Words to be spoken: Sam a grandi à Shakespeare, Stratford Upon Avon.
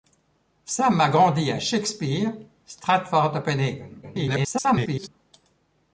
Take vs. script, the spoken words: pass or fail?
fail